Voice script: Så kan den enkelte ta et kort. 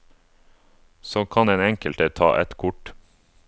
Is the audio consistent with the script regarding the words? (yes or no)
yes